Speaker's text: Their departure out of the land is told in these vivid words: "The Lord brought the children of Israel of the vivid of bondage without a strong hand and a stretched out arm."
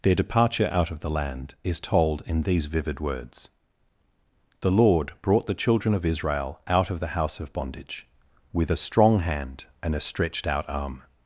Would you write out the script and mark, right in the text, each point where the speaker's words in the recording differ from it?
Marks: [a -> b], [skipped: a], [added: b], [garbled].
Their departure out of the land is told in these vivid words: "The Lord brought the children of Israel [added: out] of the [vivid -> house] of bondage [without -> with] a strong hand and a stretched out arm."